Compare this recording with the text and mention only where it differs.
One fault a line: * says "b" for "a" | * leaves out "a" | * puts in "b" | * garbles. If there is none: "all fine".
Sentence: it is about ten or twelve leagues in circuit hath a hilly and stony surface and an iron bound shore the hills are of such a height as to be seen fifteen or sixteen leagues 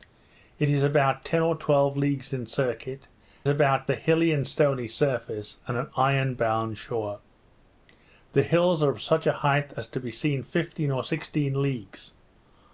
* says "about" for "hath"